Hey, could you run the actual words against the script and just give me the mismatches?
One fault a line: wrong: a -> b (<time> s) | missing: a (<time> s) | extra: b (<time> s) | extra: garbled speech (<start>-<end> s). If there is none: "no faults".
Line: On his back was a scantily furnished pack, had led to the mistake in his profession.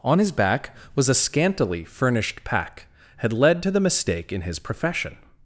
no faults